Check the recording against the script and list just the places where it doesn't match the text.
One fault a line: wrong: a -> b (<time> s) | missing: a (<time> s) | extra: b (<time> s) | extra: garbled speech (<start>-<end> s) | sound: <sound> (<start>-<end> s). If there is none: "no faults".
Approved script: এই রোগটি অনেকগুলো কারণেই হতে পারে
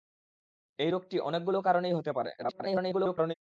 extra: garbled speech (2.4-3.3 s)